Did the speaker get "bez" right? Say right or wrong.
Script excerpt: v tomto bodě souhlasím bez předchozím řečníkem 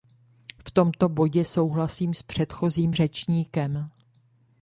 wrong